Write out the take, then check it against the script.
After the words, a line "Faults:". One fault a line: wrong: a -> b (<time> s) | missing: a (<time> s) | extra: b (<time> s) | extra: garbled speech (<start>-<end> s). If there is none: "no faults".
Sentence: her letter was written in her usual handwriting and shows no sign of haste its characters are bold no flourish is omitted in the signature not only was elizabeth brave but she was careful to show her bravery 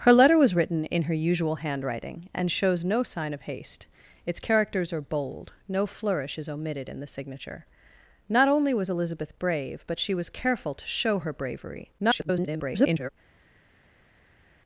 her letter was written in her usual handwriting and shows no sign of haste its characters are bold no flourish is omitted in the signature not only was elizabeth brave but she was careful to show her bravery [garbled]
Faults:
extra: garbled speech (12.0-13.1 s)